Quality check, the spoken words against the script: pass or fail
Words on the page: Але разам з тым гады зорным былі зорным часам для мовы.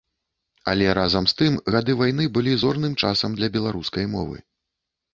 fail